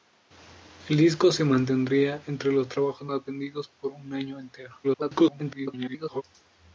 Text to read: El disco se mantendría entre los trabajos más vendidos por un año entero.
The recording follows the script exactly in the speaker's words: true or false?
false